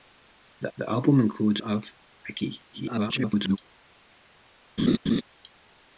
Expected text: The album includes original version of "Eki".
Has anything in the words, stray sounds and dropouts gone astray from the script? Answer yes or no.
yes